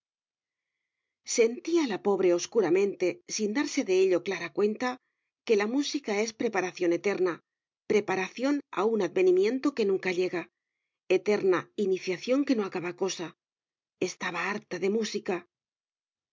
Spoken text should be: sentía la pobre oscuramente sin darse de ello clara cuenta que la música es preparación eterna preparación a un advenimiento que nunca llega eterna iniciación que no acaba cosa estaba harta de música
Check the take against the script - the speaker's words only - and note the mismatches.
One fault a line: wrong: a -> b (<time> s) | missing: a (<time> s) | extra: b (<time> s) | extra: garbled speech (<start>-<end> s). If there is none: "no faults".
no faults